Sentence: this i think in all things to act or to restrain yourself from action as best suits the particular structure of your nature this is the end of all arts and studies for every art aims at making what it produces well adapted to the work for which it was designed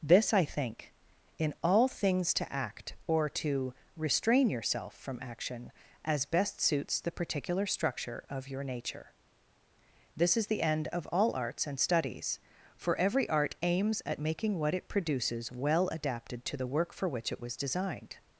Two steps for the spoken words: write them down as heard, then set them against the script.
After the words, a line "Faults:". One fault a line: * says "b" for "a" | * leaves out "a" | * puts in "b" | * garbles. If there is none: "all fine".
this i think in all things to act or to restrain yourself from action as best suits the particular structure of your nature this is the end of all arts and studies for every art aims at making what it produces well adapted to the work for which it was designed
Faults:
all fine